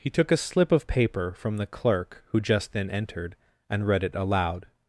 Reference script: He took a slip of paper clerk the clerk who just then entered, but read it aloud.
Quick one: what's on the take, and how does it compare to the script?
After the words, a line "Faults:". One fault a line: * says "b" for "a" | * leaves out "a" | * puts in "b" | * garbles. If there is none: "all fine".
He took a slip of paper from the clerk who just then entered, and read it aloud.
Faults:
* says "from" for "clerk"
* says "and" for "but"